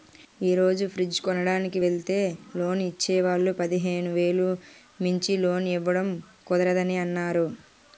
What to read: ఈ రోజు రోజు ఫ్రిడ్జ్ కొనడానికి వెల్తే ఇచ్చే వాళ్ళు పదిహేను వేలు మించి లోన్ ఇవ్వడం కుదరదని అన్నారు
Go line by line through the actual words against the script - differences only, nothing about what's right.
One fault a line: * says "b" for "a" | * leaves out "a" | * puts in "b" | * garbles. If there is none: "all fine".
* leaves out "రోజు"
* puts in "లోన్"